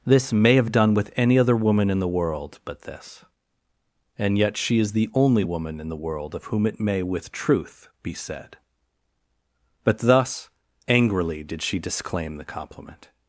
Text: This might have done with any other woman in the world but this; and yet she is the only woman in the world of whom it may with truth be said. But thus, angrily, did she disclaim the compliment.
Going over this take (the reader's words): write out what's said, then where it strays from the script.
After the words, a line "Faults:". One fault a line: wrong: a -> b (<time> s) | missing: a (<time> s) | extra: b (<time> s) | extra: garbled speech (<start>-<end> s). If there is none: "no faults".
This may have done with any other woman in the world but this; and yet she is the only woman in the world of whom it may with truth be said. But thus, angrily, did she disclaim the compliment.
Faults:
wrong: might -> may (0.3 s)